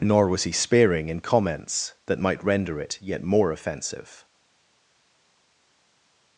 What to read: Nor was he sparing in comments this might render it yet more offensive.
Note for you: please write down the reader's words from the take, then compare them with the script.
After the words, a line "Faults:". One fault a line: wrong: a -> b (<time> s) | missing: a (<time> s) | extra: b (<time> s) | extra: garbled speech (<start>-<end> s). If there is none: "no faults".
Nor was he sparing in comments that might render it yet more offensive.
Faults:
wrong: this -> that (2.1 s)